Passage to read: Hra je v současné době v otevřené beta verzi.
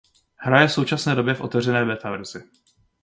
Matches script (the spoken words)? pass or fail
pass